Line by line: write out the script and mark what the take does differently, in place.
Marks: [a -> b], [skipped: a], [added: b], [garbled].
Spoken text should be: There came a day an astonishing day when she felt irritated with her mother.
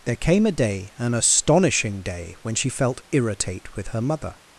There came a day an astonishing day when she felt [irritated -> irritate] with her mother.